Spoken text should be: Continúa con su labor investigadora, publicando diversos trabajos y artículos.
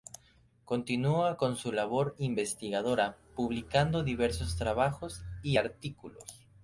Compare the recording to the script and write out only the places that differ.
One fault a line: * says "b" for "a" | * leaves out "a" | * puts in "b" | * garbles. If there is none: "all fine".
all fine